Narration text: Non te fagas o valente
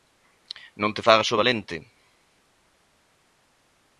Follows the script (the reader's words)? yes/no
yes